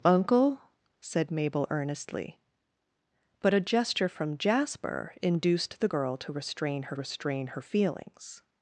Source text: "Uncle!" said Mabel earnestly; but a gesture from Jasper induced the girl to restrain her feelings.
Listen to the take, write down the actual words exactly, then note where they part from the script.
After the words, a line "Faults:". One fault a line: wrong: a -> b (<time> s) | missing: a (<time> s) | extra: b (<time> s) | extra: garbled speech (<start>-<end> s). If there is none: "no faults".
"Uncle!" said Mabel earnestly; but a gesture from Jasper induced the girl to restrain her restrain her feelings.
Faults:
extra: restrain her (6.9 s)